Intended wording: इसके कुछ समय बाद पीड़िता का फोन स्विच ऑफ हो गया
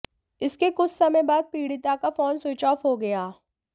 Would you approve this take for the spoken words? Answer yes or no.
yes